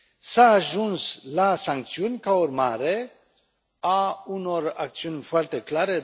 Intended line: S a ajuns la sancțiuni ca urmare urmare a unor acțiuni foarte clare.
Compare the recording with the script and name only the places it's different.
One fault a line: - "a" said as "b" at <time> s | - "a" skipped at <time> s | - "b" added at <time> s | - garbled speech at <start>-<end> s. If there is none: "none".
- "urmare" skipped at 3.1 s